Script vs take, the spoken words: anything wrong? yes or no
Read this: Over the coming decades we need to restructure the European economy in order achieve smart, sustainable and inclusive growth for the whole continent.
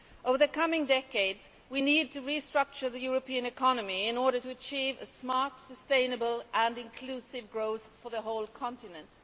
yes